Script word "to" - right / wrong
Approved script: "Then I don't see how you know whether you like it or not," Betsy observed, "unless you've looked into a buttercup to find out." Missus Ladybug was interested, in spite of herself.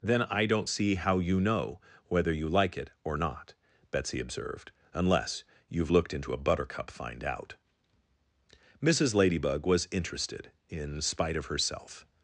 wrong